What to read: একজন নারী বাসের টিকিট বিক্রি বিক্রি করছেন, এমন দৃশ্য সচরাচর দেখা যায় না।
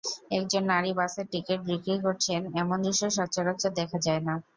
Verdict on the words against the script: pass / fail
fail